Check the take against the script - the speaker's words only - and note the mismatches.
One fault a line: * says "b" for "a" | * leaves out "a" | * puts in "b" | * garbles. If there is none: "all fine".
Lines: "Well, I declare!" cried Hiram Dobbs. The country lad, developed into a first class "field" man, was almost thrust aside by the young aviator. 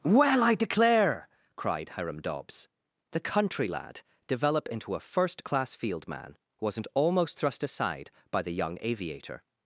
* says "develop" for "developed"
* says "wasn't" for "was"